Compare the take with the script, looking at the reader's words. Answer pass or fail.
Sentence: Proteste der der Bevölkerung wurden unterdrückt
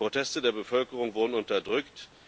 fail